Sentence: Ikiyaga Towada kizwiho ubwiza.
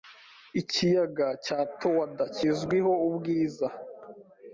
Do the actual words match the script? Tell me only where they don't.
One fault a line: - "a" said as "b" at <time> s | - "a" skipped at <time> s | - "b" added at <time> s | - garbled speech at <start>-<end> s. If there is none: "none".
- "cya" added at 1.4 s